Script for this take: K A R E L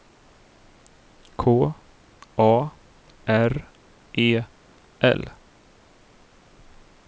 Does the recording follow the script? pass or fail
pass